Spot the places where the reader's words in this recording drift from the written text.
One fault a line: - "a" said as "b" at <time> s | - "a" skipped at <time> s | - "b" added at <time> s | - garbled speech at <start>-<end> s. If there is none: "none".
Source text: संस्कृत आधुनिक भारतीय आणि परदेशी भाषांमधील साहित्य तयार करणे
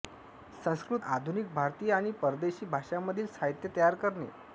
none